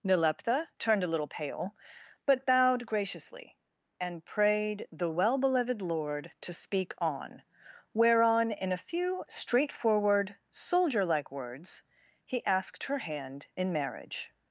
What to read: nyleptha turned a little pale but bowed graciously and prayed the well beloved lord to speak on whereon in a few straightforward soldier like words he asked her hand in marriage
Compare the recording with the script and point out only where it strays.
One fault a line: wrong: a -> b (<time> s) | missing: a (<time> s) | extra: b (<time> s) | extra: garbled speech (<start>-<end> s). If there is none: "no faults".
no faults